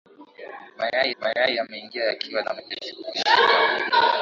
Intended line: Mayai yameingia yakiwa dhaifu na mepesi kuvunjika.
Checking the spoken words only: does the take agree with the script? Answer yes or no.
no